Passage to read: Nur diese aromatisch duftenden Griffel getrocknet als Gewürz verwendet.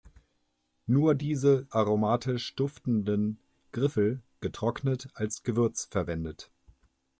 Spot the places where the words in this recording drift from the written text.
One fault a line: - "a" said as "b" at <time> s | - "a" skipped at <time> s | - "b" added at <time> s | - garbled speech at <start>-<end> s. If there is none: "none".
none